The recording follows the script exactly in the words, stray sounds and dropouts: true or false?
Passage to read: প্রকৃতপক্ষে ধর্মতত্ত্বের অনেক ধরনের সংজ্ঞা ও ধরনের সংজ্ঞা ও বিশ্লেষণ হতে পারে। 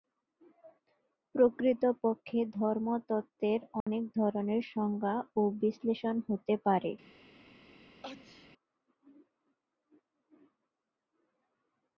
false